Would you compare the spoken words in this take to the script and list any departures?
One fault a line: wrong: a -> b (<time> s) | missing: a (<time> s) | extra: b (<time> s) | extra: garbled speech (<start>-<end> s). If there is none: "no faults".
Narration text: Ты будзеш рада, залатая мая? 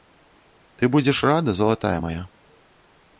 no faults